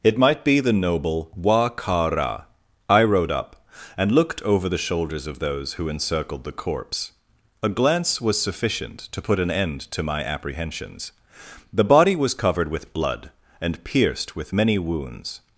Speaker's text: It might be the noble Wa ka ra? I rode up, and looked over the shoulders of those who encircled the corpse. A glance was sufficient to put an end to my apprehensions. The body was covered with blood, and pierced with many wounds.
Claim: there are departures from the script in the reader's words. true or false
false